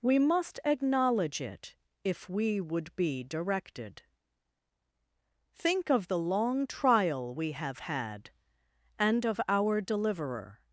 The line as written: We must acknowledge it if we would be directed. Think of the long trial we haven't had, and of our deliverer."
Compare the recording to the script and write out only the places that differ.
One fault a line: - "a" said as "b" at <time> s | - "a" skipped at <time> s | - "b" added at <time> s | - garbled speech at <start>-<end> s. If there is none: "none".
- "haven't" said as "have" at 7.5 s